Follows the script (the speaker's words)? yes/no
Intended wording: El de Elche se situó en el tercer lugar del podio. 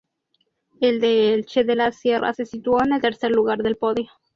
no